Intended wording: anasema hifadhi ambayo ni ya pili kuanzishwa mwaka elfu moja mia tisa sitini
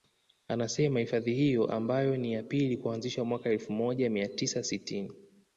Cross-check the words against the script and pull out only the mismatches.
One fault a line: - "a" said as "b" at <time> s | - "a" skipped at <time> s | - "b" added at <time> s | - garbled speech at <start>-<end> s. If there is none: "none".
- "hiyo" added at 1.3 s